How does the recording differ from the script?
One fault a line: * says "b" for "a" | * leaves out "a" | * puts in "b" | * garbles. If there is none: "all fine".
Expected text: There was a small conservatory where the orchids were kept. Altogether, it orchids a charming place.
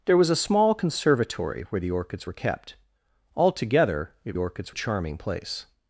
all fine